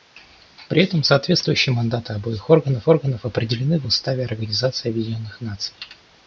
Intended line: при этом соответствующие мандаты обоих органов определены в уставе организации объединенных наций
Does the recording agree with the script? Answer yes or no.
no